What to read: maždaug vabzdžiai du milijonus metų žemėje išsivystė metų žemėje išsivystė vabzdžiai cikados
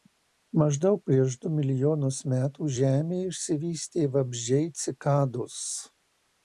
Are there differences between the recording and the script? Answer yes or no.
yes